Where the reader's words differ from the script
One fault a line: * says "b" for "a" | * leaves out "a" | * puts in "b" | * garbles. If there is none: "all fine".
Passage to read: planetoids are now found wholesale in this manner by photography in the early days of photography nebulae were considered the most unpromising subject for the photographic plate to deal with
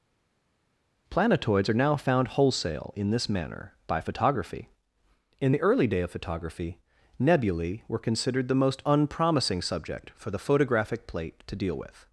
* says "day" for "days"